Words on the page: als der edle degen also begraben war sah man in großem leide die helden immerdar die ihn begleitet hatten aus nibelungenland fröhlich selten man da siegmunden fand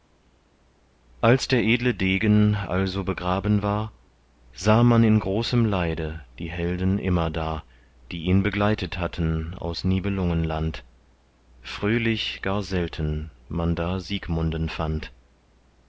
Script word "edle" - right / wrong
right